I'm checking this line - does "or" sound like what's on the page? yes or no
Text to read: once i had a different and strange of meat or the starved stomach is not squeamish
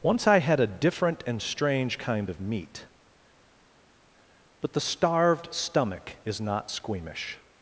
no